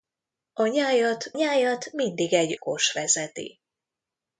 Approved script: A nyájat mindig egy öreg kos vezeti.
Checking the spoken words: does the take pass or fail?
fail